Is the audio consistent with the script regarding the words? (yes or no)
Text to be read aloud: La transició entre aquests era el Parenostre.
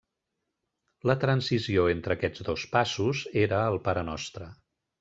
no